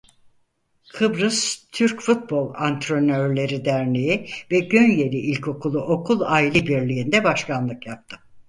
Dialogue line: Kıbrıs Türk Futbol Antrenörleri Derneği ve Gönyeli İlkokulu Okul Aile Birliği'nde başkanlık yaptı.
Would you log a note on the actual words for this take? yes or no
no